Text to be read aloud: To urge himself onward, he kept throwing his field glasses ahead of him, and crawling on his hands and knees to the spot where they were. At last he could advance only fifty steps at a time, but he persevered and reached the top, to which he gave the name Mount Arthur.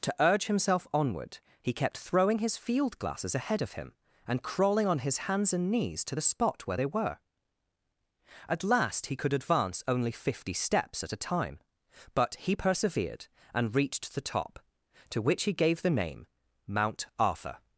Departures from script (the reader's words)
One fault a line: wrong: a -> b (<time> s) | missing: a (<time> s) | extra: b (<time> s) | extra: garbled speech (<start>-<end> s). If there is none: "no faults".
no faults